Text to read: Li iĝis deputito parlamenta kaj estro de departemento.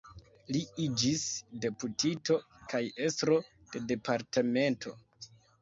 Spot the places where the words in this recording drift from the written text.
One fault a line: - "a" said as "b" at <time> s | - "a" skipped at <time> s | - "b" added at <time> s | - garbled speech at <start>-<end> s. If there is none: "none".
- "parlamenta" skipped at 2.4 s